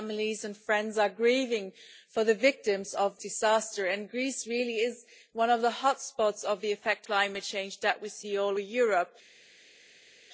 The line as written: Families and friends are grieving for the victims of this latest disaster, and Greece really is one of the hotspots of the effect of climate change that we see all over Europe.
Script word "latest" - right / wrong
wrong